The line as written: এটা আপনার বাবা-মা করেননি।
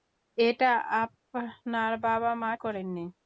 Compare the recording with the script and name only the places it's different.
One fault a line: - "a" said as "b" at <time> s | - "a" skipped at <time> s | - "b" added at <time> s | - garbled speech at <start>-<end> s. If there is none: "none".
none